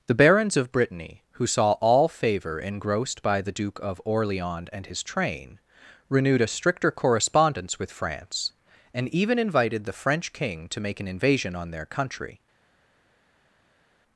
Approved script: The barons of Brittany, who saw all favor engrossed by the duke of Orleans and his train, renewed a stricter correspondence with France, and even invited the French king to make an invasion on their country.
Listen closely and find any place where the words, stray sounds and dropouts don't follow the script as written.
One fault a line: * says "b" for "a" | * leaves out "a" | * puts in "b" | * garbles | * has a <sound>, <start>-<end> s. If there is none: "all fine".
all fine